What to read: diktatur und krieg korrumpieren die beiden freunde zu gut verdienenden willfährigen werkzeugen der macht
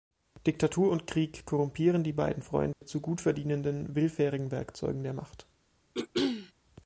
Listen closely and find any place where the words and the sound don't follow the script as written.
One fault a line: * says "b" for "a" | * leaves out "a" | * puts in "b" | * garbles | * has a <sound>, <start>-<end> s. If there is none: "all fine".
* has a dropout, 2.7-2.8 s
* has a throat clearing, 5.9-6.5 s